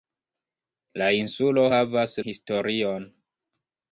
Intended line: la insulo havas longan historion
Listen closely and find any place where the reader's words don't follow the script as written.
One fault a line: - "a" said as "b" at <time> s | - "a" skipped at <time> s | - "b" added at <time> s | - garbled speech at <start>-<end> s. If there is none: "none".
- "longan" skipped at 2.2 s